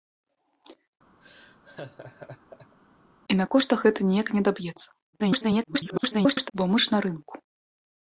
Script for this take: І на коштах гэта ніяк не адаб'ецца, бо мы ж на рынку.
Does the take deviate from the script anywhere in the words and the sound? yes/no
yes